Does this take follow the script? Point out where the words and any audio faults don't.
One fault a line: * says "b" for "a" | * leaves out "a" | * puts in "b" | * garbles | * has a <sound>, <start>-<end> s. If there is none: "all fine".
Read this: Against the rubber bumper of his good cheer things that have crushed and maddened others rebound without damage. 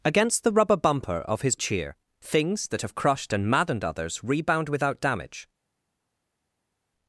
* leaves out "good"